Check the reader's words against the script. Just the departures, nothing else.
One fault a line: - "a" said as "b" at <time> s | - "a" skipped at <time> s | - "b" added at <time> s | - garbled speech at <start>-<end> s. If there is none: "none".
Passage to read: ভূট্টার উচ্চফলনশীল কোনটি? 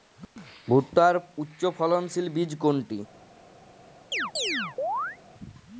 - "বীজ" added at 2.4 s